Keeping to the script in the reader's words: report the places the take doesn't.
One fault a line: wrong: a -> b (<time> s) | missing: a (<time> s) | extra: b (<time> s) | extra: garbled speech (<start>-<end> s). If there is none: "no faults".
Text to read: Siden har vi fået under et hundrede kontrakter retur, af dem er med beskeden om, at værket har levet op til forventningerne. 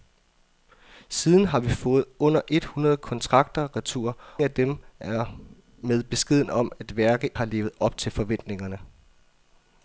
no faults